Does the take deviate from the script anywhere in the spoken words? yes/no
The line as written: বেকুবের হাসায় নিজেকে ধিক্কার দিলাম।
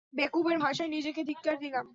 no